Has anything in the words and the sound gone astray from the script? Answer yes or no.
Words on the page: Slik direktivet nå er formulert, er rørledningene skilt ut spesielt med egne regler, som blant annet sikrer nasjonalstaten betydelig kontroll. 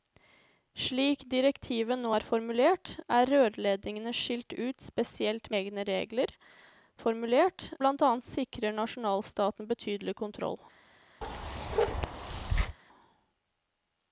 yes